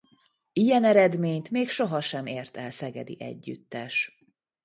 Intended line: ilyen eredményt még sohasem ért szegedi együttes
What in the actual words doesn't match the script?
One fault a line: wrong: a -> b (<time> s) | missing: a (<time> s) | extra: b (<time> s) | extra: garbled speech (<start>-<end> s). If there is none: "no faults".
extra: el (2.6 s)